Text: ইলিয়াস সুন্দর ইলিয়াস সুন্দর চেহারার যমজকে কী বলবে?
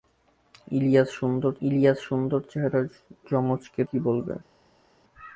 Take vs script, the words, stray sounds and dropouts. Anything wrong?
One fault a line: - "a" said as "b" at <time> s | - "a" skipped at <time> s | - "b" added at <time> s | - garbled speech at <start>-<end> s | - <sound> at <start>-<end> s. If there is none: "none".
none